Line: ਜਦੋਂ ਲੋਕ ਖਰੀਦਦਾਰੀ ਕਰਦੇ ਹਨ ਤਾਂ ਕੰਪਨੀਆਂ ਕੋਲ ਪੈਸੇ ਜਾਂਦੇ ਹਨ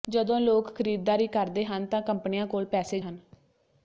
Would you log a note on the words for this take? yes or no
yes